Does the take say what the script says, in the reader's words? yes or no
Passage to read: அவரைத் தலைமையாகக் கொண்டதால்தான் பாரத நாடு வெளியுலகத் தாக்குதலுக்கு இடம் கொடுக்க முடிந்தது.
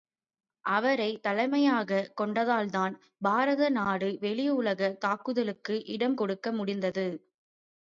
yes